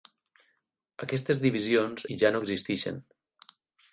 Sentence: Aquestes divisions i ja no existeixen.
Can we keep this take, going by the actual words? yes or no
yes